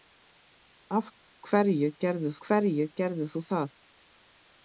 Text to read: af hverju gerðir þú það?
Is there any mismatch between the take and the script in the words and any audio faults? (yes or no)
yes